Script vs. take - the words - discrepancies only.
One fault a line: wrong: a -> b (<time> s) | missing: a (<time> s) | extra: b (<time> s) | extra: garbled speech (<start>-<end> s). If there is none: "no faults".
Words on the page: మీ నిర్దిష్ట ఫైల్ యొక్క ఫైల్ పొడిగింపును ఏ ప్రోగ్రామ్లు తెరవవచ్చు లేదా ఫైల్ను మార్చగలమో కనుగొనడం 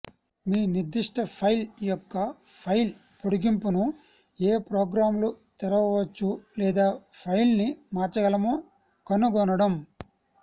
no faults